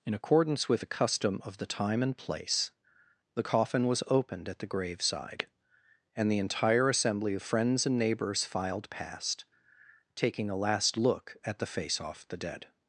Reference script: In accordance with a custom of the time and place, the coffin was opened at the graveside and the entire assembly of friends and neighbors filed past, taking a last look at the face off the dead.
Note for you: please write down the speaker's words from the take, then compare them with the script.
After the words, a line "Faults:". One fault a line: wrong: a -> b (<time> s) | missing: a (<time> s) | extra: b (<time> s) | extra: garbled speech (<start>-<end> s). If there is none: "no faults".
In accordance with a custom of the time and place, the coffin was opened at the graveside and the entire assembly of friends and neighbors filed past, taking a last look at the face off the dead.
Faults:
no faults